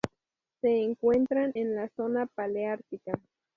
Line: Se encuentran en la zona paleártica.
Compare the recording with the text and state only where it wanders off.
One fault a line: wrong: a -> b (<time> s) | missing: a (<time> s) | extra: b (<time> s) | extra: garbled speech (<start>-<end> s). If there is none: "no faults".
no faults